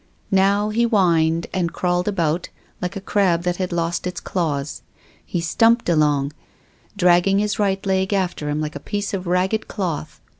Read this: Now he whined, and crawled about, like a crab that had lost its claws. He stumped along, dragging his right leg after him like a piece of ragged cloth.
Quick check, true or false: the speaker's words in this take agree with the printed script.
true